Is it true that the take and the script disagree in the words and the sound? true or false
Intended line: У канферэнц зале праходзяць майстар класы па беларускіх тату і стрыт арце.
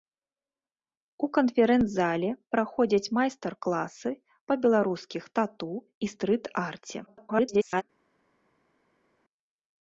true